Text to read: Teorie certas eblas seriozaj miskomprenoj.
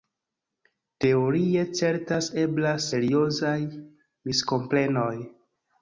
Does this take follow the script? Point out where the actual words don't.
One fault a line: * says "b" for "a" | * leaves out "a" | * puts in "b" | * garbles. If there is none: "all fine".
all fine